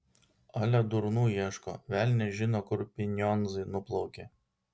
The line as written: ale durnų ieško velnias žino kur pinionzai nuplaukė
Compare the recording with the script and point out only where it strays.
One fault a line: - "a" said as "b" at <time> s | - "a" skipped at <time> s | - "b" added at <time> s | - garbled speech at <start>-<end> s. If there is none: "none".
none